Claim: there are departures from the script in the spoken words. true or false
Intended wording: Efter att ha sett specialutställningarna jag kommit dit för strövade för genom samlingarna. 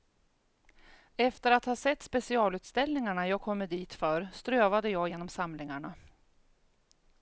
true